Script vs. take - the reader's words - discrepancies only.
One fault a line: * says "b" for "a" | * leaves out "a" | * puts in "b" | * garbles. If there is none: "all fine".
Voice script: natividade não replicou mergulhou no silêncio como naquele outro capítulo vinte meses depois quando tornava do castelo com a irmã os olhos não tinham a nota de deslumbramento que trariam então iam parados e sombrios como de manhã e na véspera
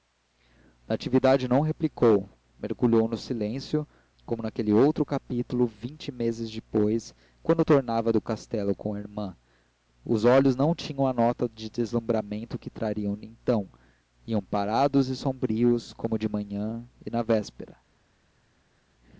all fine